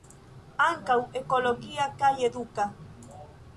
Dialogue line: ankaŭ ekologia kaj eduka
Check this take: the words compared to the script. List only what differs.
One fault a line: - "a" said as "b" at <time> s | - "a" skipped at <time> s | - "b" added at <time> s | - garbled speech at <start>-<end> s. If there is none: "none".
none